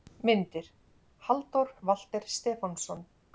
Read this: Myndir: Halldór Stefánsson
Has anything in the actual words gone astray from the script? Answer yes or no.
yes